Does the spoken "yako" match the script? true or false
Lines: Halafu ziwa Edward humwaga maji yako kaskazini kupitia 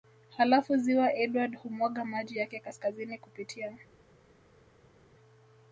false